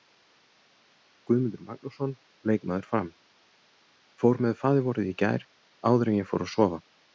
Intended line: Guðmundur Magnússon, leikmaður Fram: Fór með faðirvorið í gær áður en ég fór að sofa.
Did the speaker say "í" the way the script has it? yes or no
yes